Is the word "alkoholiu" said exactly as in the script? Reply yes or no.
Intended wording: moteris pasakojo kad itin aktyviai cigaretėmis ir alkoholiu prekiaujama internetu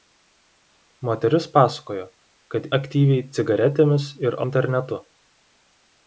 no